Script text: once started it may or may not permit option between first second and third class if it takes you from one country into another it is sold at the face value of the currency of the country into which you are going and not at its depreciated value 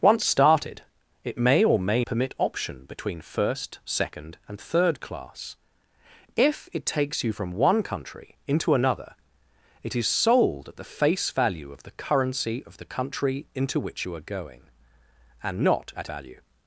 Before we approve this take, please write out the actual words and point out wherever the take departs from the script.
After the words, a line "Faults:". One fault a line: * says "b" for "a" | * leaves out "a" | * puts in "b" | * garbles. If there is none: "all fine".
once started it may or may permit option between first second and third class if it takes you from one country into another it is sold at the face value of the currency of the country into which you are going and not at value
Faults:
* leaves out "not"
* leaves out "its depreciated"